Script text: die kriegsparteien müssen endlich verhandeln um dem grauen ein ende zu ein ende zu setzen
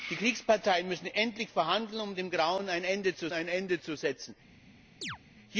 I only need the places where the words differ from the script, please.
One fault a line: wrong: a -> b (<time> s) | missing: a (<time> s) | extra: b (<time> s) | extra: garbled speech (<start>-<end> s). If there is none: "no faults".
no faults